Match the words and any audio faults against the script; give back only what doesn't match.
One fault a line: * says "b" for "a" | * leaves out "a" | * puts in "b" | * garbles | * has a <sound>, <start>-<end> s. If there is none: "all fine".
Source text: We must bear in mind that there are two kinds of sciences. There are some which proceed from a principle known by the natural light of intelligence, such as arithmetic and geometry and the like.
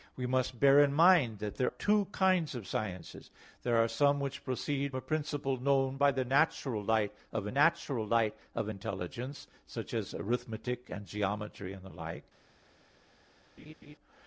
* leaves out "are"
* leaves out "from"
* puts in "natural light of"
* has a laugh, 13.6-14.0 s